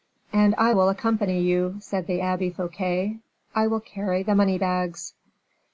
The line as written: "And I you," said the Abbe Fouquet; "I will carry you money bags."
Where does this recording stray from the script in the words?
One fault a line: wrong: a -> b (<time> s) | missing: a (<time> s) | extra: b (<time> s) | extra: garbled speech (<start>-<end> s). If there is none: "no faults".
extra: will accompany (0.7 s)
wrong: you -> the (4.2 s)